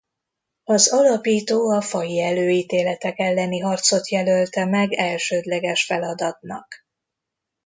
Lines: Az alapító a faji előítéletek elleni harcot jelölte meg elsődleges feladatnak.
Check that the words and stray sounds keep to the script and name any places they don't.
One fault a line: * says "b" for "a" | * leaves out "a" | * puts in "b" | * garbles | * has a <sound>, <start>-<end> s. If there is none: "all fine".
all fine